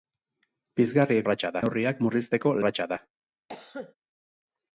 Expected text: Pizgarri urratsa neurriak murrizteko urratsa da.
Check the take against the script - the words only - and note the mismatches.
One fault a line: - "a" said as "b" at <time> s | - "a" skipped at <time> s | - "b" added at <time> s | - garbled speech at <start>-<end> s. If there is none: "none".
none